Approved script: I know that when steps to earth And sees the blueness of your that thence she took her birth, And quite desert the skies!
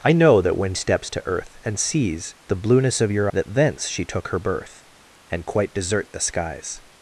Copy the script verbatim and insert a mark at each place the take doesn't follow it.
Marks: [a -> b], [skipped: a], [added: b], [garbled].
I know that when steps to earth And sees the blueness of your that thence she took her birth, And quite desert the skies!